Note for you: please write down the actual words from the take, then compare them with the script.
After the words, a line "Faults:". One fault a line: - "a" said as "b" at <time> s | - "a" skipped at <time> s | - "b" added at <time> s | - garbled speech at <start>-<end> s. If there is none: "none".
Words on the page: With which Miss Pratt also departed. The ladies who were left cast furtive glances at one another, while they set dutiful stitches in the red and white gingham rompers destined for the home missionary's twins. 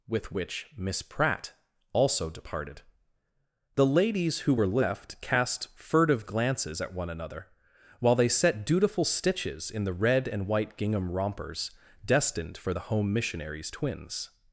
With which Miss Pratt also departed. The ladies who were left cast furtive glances at one another, while they set dutiful stitches in the red and white gingham rompers destined for the home missionary's twins.
Faults:
none